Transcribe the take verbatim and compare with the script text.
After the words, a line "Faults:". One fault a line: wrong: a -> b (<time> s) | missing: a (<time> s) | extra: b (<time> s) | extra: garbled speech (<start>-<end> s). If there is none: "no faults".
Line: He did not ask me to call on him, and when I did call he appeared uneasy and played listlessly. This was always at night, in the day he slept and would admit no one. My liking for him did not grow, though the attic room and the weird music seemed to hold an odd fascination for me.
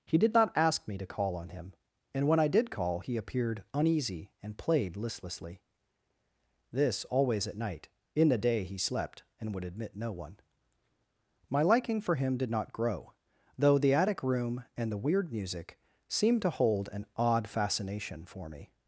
He did not ask me to call on him, and when I did call he appeared uneasy and played listlessly. This always at night, in the day he slept and would admit no one. My liking for him did not grow, though the attic room and the weird music seemed to hold an odd fascination for me.
Faults:
missing: was (7.0 s)